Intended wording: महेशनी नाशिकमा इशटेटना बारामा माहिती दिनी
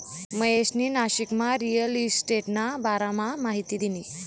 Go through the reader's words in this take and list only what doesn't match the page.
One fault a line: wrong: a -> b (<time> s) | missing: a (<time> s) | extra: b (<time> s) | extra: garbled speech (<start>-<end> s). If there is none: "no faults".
extra: रिअल (1.6 s)